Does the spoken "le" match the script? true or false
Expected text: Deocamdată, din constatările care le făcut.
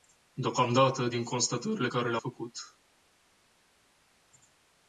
true